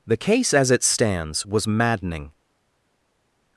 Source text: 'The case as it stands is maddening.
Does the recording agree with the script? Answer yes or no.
no